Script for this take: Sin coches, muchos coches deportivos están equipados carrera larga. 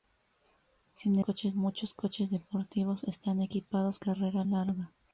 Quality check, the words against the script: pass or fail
pass